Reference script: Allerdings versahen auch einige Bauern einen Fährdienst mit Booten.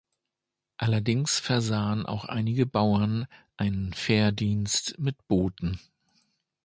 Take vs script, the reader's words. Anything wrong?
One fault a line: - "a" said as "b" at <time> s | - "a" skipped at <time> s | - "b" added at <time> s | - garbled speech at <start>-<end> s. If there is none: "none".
none